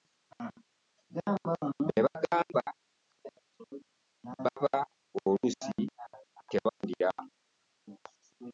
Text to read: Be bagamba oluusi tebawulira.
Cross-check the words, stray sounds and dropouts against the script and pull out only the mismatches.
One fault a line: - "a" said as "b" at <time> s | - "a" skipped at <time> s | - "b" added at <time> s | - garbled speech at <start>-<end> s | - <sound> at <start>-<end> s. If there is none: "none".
- "baba" added at 4.4 s
- dropout at 6.7-6.8 s